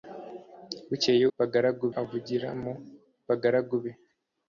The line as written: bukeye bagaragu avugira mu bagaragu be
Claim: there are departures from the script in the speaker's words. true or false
false